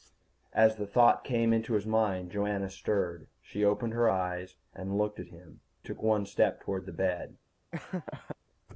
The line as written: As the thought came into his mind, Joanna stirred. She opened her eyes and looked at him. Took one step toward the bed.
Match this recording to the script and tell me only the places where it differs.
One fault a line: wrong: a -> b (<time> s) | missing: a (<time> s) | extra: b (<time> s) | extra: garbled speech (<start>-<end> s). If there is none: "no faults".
no faults